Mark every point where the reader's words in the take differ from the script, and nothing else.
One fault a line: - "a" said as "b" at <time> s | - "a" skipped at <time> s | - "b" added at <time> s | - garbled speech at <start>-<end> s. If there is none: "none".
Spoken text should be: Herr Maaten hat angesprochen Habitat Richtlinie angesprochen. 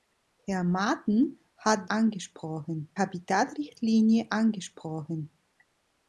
none